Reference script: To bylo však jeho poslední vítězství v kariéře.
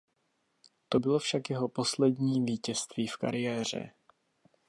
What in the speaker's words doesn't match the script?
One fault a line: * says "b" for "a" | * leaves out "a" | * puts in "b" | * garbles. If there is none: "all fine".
all fine